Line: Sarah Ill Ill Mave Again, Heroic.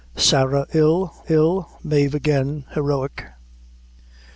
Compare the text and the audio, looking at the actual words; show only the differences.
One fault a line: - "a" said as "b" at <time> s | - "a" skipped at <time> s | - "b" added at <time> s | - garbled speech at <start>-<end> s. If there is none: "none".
none